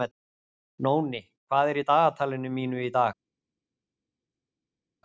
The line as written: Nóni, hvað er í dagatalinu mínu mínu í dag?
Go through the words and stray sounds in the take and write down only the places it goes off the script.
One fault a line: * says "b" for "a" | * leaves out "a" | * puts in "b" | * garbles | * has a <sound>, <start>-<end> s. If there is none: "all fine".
* leaves out "mínu"